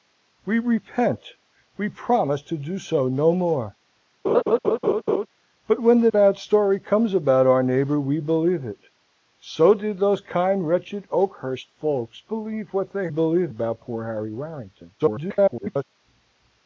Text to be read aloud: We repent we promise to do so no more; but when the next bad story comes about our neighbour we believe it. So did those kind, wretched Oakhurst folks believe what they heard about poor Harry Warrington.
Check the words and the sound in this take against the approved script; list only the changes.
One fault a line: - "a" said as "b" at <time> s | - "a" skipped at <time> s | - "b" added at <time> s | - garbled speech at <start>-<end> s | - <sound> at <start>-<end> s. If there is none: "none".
- laugh at 4.2-5.3 s
- "next" skipped at 6.1 s
- "heard" said as "believe" at 13.1 s
- garbled speech at 15.0-15.8 s